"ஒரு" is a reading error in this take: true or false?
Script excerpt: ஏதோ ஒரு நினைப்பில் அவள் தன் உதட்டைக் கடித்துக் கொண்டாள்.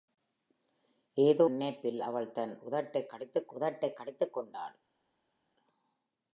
true